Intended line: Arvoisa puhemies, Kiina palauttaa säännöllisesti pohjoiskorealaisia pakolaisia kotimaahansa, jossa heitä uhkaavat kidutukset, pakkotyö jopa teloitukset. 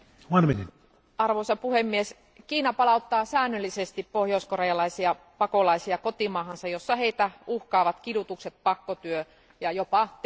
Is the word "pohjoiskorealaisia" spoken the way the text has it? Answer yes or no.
yes